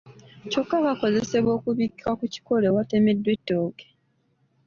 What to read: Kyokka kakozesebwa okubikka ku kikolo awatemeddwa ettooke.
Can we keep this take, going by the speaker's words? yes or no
yes